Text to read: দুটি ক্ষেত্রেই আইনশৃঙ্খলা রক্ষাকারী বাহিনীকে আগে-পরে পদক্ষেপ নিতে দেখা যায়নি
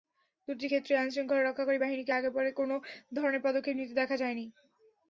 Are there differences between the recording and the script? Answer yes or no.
yes